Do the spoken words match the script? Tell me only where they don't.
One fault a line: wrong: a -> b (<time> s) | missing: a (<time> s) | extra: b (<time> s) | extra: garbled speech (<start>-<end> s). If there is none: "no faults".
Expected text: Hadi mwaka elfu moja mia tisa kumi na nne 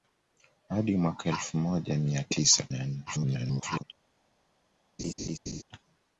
missing: kumi (2.7 s)
extra: garbled speech (3.1-3.8 s)